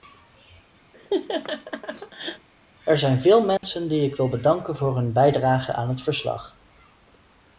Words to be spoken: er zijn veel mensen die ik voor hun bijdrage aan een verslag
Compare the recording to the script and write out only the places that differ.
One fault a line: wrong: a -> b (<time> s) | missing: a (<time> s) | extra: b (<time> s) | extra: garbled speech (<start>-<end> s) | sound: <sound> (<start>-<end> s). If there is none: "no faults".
sound: laugh (0.9-2.5 s)
sound: dropout (3.6-3.6 s)
extra: wil bedanken (4.1 s)
wrong: een -> het (5.9 s)